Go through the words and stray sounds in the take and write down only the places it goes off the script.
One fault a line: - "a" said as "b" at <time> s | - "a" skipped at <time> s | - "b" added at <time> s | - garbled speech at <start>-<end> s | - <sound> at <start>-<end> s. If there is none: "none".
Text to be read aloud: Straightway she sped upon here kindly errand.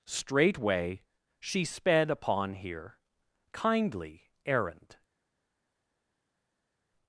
none